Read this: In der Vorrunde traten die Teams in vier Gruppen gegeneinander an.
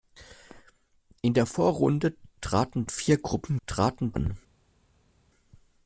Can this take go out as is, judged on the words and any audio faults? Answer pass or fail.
fail